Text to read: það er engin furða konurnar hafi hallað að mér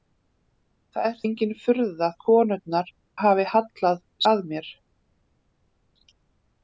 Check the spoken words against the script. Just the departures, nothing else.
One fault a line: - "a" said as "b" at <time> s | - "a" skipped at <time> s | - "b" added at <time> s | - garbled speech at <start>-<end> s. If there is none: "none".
none